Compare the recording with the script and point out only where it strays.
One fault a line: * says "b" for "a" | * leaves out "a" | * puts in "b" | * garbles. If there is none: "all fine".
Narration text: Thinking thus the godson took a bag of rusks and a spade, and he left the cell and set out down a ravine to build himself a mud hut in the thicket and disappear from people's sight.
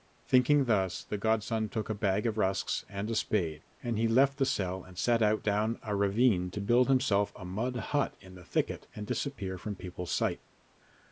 all fine